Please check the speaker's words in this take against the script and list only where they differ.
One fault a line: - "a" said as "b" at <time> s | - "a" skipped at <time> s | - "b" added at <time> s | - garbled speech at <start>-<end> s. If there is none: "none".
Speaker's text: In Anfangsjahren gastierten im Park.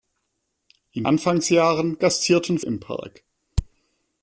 none